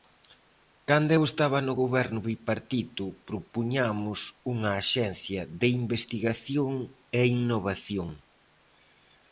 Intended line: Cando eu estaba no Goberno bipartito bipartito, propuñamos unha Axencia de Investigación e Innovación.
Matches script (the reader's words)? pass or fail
fail